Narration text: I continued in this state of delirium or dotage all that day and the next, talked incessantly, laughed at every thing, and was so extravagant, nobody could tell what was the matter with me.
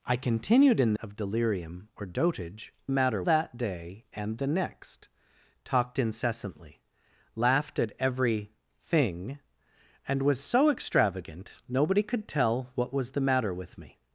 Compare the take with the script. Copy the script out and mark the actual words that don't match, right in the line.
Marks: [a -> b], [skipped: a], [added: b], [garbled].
I continued in [skipped: this state] of delirium or dotage [all -> matter] that day and the next, talked incessantly, laughed at every thing, and was so extravagant, nobody could tell what was the matter with me.